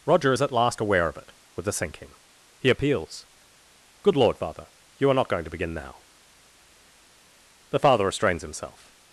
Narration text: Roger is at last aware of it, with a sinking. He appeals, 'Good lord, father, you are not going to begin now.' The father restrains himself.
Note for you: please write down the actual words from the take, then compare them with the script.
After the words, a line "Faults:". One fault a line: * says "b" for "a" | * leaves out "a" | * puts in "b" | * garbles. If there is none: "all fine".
Roger is at last aware of it, with a sinking. He appeals, 'Good lord, father, you are not going to begin now.' The father restrains himself.
Faults:
all fine